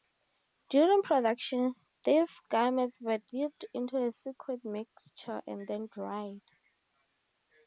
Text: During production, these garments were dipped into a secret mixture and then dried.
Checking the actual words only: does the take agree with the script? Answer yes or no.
yes